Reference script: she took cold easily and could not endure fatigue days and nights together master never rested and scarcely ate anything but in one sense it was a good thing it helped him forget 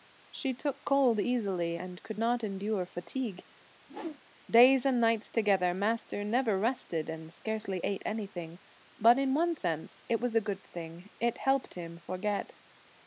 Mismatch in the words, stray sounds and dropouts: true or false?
true